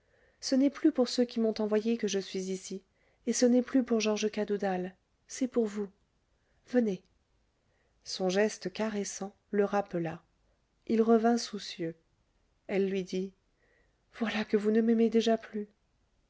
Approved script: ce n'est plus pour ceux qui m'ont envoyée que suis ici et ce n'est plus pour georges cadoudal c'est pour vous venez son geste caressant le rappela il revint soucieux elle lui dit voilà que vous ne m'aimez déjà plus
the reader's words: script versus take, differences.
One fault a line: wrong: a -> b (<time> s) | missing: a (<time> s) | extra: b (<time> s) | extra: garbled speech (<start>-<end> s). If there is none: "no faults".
extra: je (2.1 s)